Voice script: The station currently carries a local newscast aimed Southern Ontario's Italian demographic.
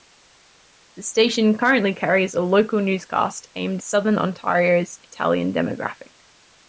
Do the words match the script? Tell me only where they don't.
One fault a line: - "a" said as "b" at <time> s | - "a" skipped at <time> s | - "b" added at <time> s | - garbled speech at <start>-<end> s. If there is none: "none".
none